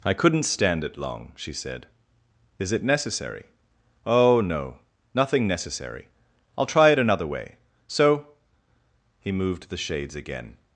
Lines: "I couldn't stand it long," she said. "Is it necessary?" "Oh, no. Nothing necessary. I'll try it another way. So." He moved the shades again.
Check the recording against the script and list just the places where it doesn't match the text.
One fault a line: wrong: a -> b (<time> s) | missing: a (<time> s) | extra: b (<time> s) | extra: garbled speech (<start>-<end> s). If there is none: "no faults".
no faults